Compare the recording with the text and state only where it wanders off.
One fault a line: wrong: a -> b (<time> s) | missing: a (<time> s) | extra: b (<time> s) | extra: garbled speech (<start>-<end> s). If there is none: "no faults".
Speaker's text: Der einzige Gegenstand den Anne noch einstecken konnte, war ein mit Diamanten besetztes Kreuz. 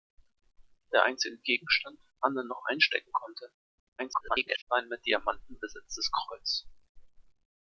missing: den (1.9 s)
extra: garbled speech (4.0-4.6 s)